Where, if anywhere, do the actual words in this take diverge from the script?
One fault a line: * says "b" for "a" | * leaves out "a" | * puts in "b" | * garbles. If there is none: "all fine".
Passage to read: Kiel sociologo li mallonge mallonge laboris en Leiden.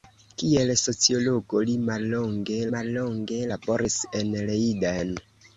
all fine